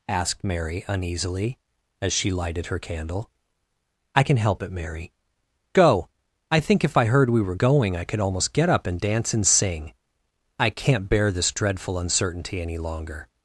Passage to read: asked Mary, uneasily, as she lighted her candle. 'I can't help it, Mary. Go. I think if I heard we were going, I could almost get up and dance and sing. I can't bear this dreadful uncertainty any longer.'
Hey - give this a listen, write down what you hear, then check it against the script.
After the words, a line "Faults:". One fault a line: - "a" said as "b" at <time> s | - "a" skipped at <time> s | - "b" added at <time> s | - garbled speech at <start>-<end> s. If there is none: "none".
asked Mary, uneasily, as she lighted her candle. 'I can help it, Mary. Go. I think if I heard we were going, I could almost get up and dance and sing. I can't bear this dreadful uncertainty any longer.'
Faults:
- "can't" said as "can" at 4.2 s